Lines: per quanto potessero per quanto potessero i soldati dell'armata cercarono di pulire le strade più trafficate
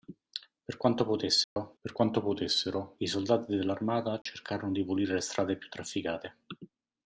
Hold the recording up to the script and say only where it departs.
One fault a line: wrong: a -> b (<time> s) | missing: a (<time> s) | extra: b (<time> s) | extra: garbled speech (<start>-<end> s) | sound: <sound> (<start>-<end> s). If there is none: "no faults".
sound: dropout (1.4-1.6 s)
sound: dropout (4.2-4.3 s)